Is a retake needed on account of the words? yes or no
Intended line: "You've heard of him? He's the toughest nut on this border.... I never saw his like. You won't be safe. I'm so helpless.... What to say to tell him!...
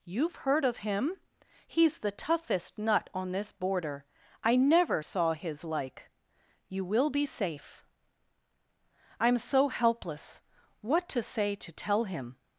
yes